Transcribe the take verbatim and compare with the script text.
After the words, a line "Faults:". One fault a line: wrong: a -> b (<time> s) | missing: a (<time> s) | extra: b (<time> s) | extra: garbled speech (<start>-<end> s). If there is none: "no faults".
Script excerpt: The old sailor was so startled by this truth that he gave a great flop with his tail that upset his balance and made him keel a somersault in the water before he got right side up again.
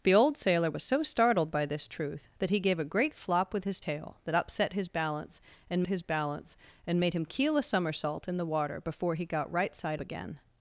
The old sailor was so startled by this truth that he gave a great flop with his tail that upset his balance and his balance and made him keel a somersault in the water before he got right side again.
Faults:
extra: his balance and (5.9 s)
missing: up (10.0 s)